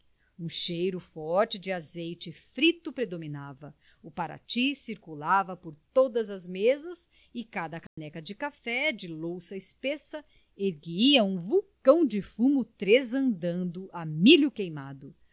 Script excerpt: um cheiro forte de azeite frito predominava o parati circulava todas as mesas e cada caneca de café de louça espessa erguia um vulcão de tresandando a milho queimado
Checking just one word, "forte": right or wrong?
right